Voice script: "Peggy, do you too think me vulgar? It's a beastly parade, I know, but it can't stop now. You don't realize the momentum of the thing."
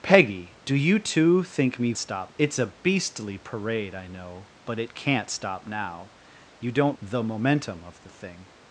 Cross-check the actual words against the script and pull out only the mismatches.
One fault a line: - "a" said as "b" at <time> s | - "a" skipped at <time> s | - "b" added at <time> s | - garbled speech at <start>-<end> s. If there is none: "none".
- "vulgar" said as "stop" at 2.0 s
- "realize" skipped at 7.0 s